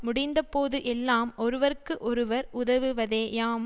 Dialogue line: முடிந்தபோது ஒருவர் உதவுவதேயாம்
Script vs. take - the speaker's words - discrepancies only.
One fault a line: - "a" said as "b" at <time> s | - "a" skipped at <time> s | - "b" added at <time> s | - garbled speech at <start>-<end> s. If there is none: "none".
- "எல்லாம் ஒருவர்க்கு" added at 0.8 s